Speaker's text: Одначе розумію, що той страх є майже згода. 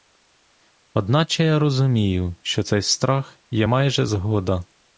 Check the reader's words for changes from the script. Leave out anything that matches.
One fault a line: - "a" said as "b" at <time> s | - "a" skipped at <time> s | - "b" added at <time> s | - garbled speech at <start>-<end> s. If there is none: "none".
- "я" added at 1.4 s
- "той" said as "цей" at 2.6 s